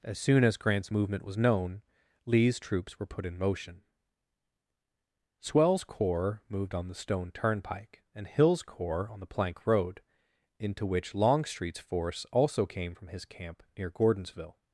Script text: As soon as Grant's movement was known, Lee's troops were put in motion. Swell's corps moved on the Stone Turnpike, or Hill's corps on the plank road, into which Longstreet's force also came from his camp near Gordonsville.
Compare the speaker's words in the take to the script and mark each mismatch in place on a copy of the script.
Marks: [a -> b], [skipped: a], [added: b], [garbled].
As soon as Grant's movement was known, Lee's troops were put in motion. Swell's corps moved on the Stone Turnpike, [or -> and] Hill's corps on the plank road, into which Longstreet's force also came from his camp near Gordonsville.